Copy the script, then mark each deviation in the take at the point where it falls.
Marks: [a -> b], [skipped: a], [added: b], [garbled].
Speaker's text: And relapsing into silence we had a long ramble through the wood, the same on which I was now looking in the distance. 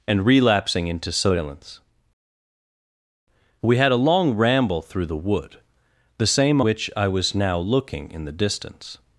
And relapsing into silence we had a long ramble through the wood, the same [skipped: on] which I was now looking in the distance.